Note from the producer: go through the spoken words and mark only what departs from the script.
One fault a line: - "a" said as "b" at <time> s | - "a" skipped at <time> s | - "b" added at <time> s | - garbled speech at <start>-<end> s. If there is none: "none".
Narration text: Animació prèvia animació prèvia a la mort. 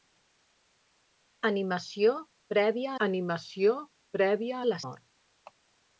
none